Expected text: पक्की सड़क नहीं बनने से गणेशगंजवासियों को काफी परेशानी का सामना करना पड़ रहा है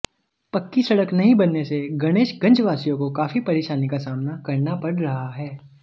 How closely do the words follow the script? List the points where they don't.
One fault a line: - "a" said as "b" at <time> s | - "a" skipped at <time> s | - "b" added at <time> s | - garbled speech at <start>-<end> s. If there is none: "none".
none